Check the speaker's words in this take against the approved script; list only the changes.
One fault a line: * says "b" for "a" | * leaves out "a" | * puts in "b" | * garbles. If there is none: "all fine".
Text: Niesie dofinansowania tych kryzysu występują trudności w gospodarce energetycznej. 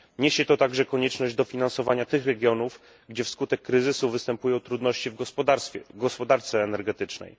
* puts in "to także konieczność"
* puts in "regionów gdzie wskutek"